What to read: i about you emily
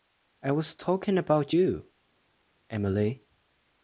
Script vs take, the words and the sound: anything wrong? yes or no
yes